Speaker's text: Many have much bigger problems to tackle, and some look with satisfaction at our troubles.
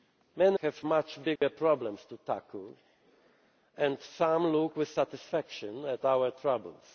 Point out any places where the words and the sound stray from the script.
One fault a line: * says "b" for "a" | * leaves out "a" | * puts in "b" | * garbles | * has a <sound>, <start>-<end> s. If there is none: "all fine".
* has a dropout, 1.4-1.4 s